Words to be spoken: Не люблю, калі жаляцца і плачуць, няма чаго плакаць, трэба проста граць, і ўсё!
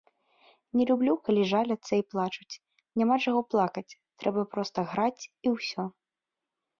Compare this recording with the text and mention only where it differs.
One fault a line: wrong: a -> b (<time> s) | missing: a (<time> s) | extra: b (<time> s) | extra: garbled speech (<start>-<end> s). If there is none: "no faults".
no faults